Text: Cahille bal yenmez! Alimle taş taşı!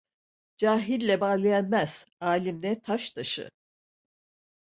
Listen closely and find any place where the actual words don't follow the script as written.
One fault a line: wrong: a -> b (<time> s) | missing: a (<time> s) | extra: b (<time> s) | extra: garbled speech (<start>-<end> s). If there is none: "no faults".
no faults